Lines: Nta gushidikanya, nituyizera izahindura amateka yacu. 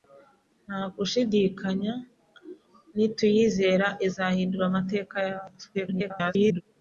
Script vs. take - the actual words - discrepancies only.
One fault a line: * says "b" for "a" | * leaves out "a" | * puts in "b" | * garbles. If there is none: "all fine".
* garbles